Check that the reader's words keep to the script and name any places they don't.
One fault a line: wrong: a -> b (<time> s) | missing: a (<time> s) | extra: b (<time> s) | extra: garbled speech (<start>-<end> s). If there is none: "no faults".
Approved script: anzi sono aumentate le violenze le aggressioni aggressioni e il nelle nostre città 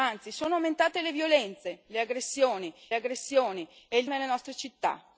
no faults